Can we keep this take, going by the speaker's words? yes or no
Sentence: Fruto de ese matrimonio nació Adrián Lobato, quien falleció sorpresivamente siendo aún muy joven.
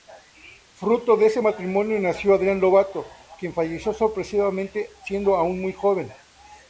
yes